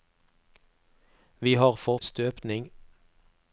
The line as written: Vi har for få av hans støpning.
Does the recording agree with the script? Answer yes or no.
no